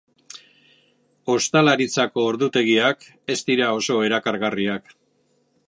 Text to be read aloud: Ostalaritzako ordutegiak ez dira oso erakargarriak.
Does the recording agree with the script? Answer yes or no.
yes